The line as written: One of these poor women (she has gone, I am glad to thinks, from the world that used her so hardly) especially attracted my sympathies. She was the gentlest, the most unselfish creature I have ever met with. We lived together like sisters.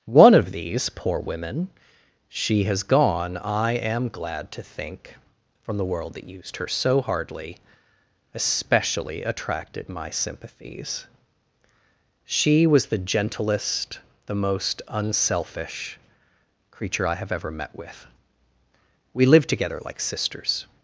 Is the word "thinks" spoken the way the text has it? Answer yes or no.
no